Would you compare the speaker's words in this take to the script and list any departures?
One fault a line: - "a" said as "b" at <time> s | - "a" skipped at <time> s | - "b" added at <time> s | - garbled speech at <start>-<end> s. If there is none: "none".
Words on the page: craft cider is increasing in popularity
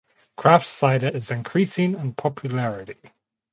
none